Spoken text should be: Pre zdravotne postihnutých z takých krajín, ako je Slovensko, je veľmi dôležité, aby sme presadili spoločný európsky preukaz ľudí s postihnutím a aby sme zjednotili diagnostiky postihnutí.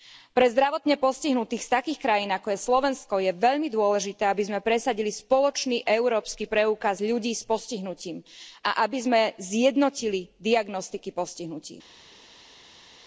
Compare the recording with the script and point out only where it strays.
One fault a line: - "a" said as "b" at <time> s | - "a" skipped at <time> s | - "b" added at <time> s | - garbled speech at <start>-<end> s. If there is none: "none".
none